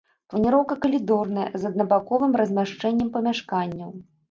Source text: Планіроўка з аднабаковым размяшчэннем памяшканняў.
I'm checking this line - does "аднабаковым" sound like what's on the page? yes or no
yes